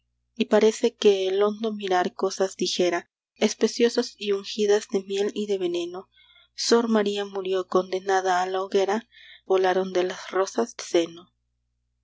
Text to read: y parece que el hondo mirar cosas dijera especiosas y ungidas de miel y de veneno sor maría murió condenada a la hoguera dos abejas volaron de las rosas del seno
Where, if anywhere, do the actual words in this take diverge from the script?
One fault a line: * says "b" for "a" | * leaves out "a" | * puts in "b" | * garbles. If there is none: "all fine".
* leaves out "dos abejas"
* leaves out "del"